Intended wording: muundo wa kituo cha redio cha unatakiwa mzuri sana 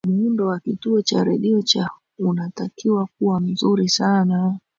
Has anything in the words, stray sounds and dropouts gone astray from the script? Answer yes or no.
yes